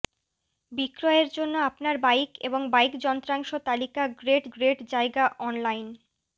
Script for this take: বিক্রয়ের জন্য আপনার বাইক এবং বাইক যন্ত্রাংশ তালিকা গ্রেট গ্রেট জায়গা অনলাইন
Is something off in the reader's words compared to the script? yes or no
no